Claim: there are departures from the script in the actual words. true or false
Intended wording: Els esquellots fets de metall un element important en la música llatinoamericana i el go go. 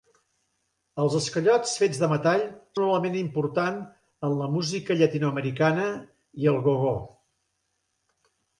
false